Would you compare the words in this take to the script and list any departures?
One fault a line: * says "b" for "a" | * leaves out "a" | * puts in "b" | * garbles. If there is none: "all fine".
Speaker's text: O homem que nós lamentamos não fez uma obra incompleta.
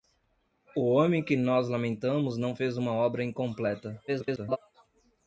* garbles